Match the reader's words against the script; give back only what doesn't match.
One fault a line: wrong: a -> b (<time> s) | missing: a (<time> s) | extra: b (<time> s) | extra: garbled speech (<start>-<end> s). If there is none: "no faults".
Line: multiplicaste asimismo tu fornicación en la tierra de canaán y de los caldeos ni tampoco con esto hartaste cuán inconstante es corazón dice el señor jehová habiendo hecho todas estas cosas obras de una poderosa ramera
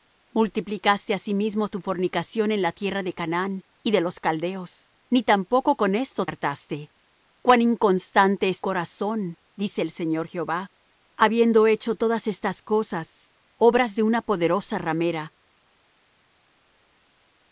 no faults